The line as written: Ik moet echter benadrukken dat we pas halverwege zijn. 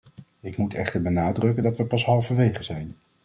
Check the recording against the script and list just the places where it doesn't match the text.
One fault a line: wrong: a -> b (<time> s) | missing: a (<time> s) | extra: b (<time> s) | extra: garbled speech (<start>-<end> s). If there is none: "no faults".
no faults